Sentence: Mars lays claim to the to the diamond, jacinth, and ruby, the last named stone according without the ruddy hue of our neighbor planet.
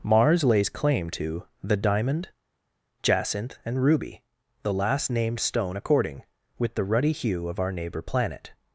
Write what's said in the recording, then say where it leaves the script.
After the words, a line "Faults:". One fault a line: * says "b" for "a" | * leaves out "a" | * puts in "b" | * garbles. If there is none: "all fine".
Mars lays claim to the diamond, jacinth, and ruby, the last named stone according with the ruddy hue of our neighbor planet.
Faults:
* leaves out "to the"
* says "with" for "without"